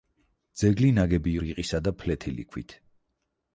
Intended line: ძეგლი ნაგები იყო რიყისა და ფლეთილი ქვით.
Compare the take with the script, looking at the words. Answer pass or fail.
fail